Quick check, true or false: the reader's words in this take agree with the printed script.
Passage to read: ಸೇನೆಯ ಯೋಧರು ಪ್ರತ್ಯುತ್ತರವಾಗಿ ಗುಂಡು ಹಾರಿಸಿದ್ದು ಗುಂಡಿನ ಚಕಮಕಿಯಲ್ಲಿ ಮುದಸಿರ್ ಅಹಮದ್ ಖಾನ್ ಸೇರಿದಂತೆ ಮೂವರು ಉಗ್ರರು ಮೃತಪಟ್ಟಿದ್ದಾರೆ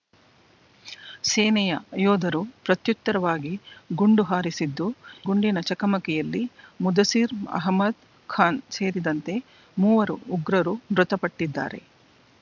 true